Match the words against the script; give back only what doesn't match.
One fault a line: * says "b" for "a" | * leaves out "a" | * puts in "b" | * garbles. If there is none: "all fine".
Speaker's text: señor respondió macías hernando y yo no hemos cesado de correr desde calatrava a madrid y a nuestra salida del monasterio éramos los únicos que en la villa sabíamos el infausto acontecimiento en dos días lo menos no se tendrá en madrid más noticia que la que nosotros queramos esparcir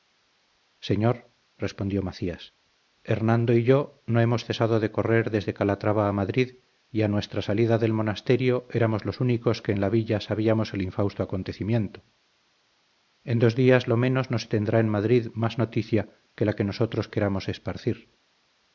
all fine